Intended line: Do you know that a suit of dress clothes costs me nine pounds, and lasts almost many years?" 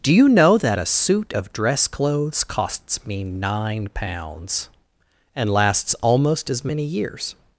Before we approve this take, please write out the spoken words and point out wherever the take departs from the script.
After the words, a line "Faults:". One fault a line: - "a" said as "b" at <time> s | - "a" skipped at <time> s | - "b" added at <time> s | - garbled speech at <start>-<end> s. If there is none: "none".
Do you know that a suit of dress clothes costs me nine pounds, and lasts almost as many years?"
Faults:
- "as" added at 6.5 s